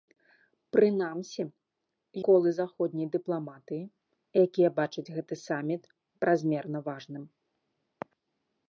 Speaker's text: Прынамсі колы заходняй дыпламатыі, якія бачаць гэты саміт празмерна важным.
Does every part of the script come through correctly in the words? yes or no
yes